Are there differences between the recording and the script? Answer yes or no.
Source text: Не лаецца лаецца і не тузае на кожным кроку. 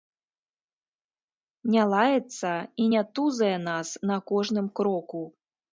yes